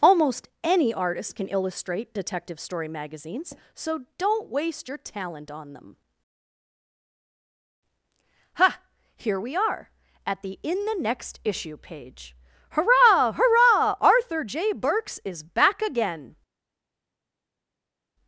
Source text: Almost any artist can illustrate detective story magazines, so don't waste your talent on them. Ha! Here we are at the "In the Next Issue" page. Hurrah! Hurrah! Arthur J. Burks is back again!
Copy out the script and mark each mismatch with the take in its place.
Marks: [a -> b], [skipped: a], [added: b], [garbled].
Almost any artist can illustrate detective story magazines, so don't waste your talent on them. Ha! Here we are at the "In the Next Issue" page. Hurrah! Hurrah! Arthur J. Burks is back again!